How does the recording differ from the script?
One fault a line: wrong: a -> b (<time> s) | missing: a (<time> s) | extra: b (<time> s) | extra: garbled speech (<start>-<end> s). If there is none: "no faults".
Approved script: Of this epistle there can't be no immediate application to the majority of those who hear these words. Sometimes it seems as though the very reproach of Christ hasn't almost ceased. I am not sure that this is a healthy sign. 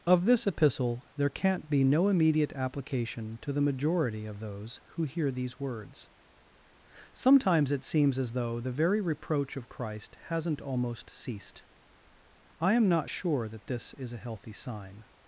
no faults